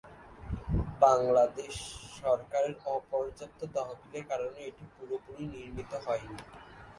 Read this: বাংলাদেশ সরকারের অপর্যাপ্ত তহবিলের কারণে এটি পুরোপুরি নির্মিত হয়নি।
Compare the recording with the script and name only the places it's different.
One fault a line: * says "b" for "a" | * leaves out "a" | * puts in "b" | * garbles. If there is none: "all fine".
all fine